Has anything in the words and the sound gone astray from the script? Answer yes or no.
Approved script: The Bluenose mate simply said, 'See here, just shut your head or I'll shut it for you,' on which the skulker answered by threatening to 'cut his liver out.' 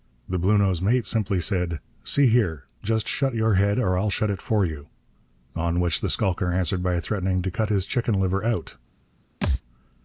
yes